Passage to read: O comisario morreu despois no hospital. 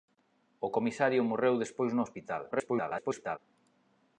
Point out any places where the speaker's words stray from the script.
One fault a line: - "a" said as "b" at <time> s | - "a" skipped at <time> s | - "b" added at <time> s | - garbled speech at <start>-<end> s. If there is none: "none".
- garbled speech at 2.5-3.4 s